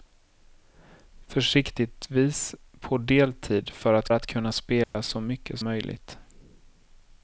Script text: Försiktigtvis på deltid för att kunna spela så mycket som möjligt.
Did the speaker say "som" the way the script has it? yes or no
no